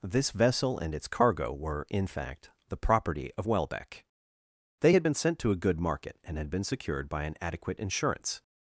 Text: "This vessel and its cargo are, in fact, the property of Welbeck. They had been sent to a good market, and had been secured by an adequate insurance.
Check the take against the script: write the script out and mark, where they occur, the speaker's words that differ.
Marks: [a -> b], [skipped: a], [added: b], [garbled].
"This vessel and its cargo [are, -> were] in fact, the property of Welbeck. They had been sent to a good market, and had been secured by an adequate insurance.